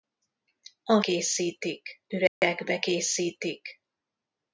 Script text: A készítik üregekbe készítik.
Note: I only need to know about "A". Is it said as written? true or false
true